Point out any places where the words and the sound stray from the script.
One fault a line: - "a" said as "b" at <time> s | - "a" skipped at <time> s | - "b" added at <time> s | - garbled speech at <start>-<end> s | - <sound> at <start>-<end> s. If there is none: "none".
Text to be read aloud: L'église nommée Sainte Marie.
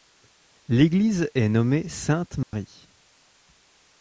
- "est" added at 1.4 s
- dropout at 2.4-2.5 s